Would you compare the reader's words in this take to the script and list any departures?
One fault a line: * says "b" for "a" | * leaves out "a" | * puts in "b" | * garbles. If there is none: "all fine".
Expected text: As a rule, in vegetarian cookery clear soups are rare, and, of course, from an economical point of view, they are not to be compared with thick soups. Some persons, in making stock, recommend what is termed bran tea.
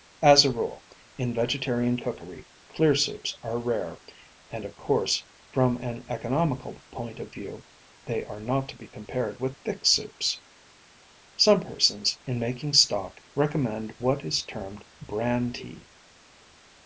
all fine